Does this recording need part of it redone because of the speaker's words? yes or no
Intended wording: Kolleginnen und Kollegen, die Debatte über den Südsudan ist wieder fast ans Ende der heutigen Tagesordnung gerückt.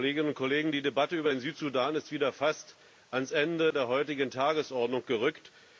no